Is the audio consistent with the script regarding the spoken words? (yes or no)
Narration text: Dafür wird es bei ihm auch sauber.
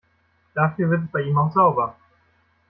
yes